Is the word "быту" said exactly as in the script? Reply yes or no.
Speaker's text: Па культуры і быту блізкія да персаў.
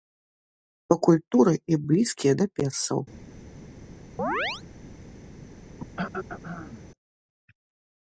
no